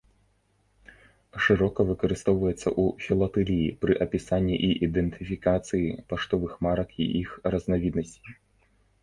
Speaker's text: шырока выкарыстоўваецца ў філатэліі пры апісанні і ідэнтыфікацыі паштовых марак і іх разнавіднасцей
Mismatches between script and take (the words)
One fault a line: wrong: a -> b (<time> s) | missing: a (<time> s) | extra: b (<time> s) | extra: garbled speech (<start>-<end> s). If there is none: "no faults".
no faults